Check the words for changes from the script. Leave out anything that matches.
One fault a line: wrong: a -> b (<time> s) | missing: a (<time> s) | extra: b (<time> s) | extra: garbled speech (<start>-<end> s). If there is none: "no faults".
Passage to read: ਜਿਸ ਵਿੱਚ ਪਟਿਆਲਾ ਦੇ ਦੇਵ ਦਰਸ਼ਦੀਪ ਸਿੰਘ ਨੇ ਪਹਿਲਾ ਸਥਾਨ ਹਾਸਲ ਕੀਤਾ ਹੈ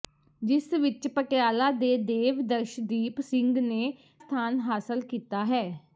missing: ਪਹਿਲਾ (3.9 s)